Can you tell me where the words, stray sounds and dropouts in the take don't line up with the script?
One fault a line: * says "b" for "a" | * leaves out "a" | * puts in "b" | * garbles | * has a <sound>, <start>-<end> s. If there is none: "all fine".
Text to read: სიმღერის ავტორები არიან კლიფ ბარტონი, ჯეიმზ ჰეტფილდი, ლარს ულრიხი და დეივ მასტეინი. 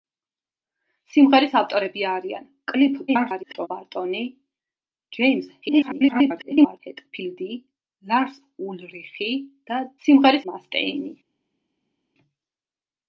* garbles
* garbles
* says "სიმღერის" for "დეივ"